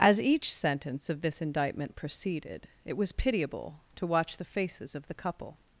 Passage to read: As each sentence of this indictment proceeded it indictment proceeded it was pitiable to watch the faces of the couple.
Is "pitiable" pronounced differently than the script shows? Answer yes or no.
no